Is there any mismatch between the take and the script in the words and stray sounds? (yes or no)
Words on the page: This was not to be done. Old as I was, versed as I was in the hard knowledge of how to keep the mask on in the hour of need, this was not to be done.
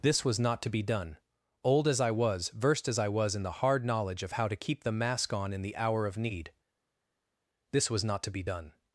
no